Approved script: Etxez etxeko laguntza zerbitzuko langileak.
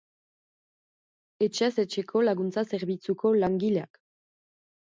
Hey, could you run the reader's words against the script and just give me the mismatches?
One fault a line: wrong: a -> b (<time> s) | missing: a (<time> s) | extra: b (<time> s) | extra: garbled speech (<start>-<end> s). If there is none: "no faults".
no faults